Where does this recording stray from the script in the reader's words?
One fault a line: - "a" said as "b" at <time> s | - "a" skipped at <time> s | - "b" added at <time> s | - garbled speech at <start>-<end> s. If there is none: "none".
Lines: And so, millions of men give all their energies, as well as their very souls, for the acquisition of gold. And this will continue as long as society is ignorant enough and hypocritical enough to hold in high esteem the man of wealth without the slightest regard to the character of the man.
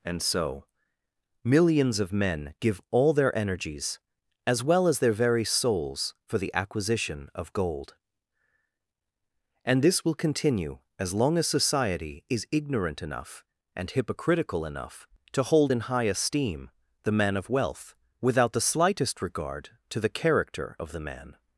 none